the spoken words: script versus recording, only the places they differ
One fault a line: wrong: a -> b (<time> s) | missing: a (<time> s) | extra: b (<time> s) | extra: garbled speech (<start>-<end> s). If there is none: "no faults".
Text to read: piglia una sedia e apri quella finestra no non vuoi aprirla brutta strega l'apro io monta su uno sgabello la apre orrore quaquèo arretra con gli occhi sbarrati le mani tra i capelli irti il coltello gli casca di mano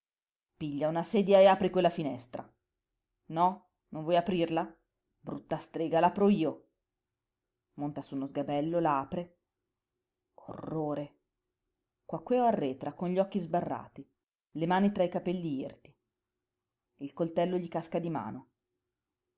no faults